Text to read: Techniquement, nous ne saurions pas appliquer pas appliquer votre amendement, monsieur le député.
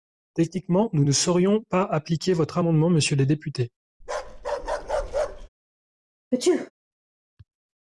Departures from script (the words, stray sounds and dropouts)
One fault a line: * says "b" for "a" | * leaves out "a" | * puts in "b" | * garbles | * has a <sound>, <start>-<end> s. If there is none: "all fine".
* leaves out "pas appliquer"
* has a bark, 4.0-5.5 s
* has a sneeze, 6.3-6.7 s